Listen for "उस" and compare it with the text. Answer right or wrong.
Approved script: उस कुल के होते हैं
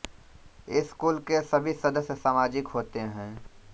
wrong